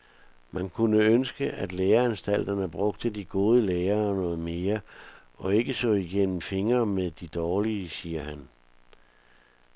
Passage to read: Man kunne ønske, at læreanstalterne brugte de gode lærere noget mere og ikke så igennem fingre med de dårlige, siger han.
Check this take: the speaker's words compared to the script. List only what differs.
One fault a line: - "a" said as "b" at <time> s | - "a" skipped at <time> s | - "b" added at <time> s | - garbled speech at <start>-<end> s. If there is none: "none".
none